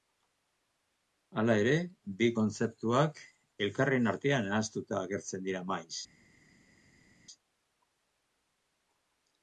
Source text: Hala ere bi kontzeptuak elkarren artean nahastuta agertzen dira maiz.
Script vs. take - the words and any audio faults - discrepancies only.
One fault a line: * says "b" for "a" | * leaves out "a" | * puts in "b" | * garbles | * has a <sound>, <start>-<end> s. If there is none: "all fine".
all fine